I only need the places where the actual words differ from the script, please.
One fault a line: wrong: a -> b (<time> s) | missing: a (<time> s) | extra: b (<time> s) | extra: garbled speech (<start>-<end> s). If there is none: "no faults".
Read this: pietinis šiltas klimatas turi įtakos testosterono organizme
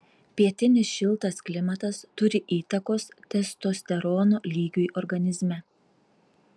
extra: lygiui (4.5 s)